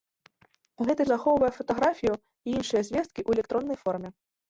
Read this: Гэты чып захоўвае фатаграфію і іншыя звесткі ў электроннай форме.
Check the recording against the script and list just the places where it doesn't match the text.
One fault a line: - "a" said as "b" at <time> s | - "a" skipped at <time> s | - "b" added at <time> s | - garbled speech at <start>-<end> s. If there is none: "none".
- "чып" skipped at 1.0 s